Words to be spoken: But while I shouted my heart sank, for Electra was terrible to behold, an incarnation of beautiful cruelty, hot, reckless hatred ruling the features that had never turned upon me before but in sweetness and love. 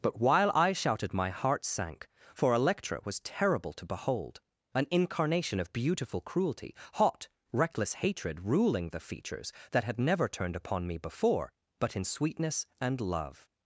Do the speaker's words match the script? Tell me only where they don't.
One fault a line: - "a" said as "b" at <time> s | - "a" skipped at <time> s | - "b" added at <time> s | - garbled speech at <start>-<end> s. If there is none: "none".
none